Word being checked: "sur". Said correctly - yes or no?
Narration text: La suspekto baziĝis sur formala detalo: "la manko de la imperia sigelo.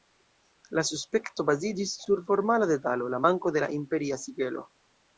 yes